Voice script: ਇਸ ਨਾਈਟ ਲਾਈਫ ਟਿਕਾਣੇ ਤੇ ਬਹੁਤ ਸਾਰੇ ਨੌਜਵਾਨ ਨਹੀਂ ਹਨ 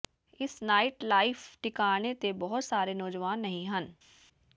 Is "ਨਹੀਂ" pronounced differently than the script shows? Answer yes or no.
no